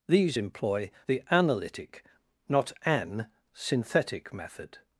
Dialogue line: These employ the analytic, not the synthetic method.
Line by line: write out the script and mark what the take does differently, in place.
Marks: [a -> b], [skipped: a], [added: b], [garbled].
These employ the analytic, not [the -> an] synthetic method.